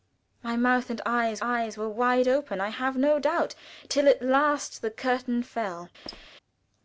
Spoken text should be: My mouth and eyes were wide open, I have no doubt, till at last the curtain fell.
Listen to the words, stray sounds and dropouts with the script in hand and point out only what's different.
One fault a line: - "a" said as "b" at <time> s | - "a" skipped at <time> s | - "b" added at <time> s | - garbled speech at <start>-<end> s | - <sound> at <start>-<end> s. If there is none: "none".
- "eyes" added at 1.4 s
- squeak at 6.0-6.3 s